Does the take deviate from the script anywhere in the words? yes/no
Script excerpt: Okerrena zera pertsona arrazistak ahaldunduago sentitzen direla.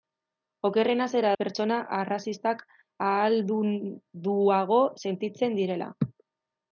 no